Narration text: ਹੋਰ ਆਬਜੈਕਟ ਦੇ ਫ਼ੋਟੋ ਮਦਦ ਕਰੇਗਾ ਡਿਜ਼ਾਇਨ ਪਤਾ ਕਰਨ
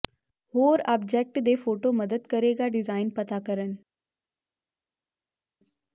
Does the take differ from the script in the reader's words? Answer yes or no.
no